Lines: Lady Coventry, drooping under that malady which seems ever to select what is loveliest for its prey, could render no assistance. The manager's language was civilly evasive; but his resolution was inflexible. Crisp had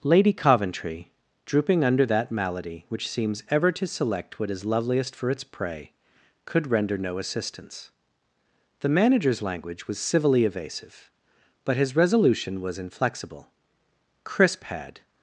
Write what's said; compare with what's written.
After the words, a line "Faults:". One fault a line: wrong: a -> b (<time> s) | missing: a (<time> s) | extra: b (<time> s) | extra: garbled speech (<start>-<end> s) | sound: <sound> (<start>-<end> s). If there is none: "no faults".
Lady Coventry, drooping under that malady which seems ever to select what is loveliest for its prey, could render no assistance. The manager's language was civilly evasive; but his resolution was inflexible. Crisp had
Faults:
no faults